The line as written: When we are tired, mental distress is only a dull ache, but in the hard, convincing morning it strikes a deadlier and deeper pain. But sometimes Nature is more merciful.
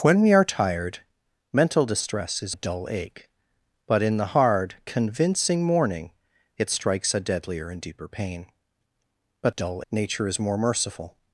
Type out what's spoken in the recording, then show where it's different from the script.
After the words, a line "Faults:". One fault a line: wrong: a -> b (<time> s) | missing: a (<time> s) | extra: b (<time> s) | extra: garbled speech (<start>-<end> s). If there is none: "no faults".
When we are tired, mental distress is a dull ache, but in the hard, convincing morning it strikes a deadlier and deeper pain. But dull Nature is more merciful.
Faults:
missing: only (2.5 s)
wrong: sometimes -> dull (9.5 s)